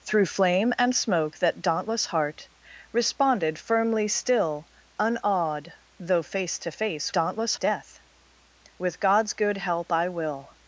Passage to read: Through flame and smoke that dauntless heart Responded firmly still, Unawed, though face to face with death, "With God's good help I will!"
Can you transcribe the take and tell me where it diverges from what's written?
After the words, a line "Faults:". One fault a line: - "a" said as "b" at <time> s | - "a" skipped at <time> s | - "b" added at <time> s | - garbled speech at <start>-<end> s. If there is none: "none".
Through flame and smoke that dauntless heart Responded firmly still, Unawed, though face to face dauntless death, "With God's good help I will!"
Faults:
- "with" said as "dauntless" at 7.1 s